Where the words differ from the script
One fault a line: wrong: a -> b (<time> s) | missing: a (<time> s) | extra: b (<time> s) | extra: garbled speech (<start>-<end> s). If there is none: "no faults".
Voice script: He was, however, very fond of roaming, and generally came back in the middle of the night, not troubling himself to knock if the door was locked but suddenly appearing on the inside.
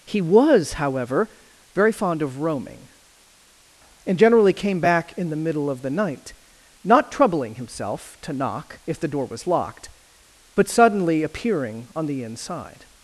no faults